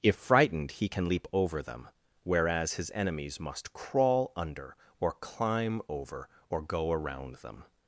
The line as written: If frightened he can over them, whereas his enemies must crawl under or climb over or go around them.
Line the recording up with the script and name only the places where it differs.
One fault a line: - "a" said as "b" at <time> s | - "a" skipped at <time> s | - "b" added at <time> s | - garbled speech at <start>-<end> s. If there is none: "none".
- "leap" added at 1.1 s